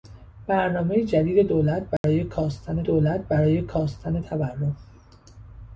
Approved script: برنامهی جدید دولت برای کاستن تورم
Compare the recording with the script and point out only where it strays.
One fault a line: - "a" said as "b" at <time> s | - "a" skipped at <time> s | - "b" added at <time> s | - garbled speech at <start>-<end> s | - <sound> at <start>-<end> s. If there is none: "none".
- dropout at 2.0-2.0 s
- "دولت برای کاستن" added at 2.8 s